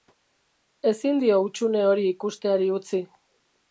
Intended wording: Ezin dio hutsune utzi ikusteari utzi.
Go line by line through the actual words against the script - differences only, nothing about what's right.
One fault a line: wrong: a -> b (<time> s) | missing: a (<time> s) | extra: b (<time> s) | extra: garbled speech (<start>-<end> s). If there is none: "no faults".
wrong: utzi -> hori (1.9 s)